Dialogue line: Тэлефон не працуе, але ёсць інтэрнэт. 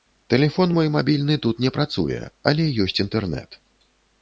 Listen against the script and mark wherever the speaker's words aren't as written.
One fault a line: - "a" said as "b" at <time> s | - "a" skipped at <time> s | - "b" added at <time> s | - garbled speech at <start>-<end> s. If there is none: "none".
- "мой мабільны тут" added at 0.8 s